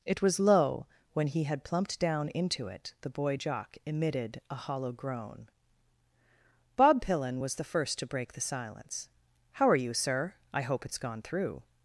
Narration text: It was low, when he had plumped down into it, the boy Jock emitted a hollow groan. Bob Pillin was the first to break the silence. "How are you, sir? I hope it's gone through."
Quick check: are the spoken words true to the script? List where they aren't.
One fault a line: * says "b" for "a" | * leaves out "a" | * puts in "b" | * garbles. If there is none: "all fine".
all fine